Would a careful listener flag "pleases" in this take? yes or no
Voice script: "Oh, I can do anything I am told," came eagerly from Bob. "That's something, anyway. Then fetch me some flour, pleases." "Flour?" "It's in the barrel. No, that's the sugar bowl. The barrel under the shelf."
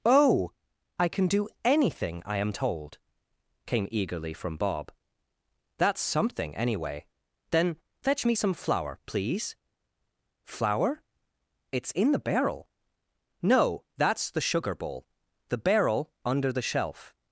yes